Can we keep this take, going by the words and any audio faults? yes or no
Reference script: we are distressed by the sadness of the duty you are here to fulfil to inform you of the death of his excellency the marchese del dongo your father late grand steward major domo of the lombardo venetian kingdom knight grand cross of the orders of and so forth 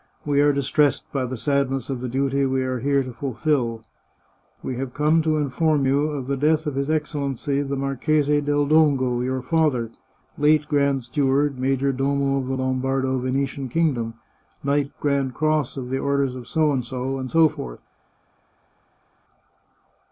no